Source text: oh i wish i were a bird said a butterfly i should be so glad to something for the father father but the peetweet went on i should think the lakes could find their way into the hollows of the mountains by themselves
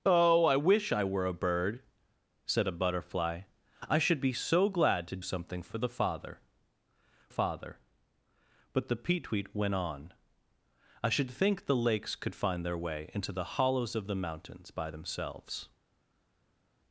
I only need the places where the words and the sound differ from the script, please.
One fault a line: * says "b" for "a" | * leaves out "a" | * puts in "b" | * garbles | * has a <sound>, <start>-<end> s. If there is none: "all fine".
all fine